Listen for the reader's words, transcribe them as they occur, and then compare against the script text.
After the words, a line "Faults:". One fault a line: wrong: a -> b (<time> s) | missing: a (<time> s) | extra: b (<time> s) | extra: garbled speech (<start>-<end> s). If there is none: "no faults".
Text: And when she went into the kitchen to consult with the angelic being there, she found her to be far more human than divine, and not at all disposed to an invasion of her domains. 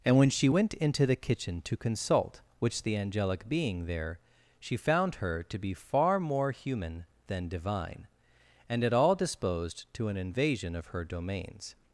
And when she went into the kitchen to consult which the angelic being there, she found her to be far more human than divine, and at all disposed to an invasion of her domains.
Faults:
wrong: with -> which (2.6 s)
missing: not (8.8 s)